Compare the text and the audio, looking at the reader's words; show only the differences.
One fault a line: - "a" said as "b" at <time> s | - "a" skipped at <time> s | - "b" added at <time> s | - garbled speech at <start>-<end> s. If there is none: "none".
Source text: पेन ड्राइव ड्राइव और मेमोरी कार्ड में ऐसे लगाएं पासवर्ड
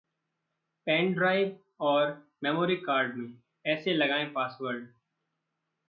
- "ड्राइव" skipped at 1.6 s